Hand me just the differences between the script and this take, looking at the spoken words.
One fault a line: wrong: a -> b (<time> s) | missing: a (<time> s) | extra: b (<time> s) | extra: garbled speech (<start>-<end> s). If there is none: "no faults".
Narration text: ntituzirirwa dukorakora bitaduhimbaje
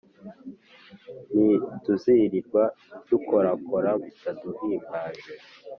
no faults